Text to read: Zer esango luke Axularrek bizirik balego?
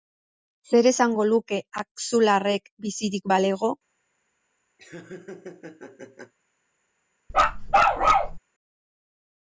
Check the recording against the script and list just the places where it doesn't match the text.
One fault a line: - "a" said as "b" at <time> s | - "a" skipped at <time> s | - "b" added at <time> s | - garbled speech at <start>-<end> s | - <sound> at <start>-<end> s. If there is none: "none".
- laugh at 4.8-6.3 s
- bark at 7.3-8.4 s